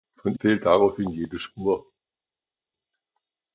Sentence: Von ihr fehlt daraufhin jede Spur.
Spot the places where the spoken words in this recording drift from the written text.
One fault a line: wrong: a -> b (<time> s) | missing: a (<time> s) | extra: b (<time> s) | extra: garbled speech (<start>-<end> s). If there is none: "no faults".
missing: ihr (0.3 s)